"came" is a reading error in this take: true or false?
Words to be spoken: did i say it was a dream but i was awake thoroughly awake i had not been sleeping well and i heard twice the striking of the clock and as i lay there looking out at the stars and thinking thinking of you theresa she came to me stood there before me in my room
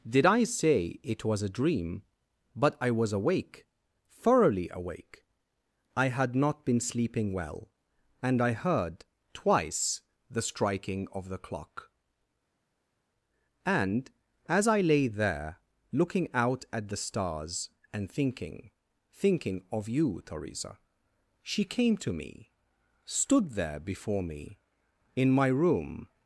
false